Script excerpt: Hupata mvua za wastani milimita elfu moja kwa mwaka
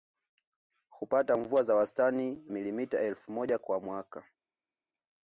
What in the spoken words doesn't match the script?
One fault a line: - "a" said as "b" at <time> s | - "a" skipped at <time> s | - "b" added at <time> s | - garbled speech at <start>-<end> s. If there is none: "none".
none